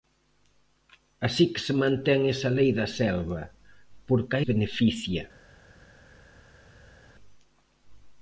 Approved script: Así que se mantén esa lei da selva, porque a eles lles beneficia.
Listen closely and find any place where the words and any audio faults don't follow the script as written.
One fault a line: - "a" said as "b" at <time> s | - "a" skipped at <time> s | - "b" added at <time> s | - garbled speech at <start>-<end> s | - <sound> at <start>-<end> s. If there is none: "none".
- "eles lles" skipped at 4.4 s